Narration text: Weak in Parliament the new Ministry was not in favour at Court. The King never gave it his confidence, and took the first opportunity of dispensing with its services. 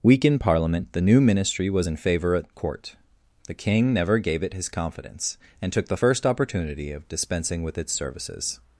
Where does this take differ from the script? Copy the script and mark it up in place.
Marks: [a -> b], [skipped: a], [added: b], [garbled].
Weak in Parliament the new Ministry was [skipped: not] in favour at Court. The King never gave it his confidence, and took the first opportunity of dispensing with its services.